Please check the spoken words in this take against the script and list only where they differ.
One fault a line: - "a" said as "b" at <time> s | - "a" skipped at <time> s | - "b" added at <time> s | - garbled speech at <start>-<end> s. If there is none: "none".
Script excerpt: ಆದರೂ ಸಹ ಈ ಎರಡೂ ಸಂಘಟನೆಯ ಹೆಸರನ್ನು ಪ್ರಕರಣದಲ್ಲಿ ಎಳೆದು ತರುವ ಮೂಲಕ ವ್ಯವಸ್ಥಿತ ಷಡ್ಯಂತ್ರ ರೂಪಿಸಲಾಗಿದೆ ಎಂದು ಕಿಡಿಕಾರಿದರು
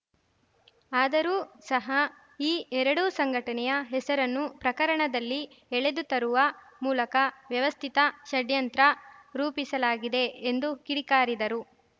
none